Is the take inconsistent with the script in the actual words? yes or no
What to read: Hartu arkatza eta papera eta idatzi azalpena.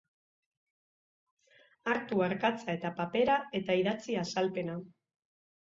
no